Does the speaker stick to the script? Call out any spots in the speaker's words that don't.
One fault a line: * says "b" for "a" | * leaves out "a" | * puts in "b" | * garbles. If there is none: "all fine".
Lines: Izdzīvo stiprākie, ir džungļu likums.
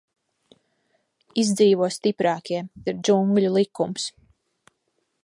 all fine